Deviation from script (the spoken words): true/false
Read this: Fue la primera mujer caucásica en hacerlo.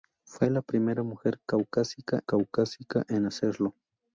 true